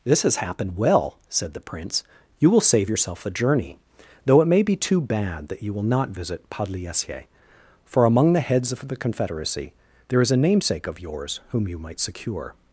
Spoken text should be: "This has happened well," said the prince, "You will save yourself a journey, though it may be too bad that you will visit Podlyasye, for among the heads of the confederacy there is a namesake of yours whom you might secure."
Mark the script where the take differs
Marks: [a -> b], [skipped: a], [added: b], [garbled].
"This has happened well," said the prince, "You will save yourself a journey, though it may be too bad that you will [added: not] visit Podlyasye, for among the heads of the confederacy there is a namesake of yours whom you might secure."